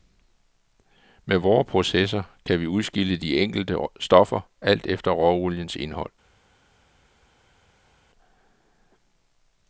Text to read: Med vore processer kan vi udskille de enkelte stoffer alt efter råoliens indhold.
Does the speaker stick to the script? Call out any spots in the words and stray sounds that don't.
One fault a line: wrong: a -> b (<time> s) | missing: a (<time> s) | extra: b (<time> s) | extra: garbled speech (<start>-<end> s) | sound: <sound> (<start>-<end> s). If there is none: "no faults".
no faults